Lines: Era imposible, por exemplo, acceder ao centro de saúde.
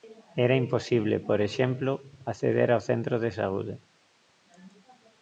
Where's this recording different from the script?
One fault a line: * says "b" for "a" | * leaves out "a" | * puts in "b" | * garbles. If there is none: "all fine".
all fine